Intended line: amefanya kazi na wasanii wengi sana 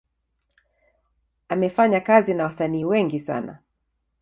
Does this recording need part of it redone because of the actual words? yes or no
no